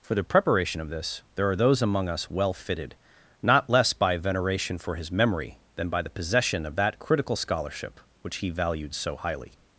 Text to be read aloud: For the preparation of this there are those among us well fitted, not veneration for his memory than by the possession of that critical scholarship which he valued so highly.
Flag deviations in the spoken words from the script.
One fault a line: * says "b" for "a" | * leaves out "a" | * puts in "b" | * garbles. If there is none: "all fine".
* puts in "less by"